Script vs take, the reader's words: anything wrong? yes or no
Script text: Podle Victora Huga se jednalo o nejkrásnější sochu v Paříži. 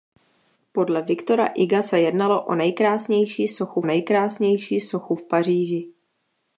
yes